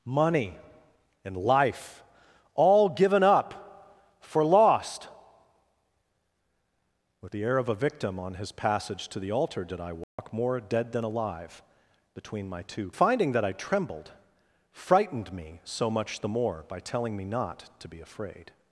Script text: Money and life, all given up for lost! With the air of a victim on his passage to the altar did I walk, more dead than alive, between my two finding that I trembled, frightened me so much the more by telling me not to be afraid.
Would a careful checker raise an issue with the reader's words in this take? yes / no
no